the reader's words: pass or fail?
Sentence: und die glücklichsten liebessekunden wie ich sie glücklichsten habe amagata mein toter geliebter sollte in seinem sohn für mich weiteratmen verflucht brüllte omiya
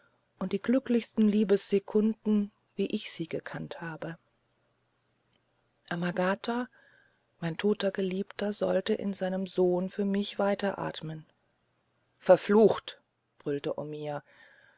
fail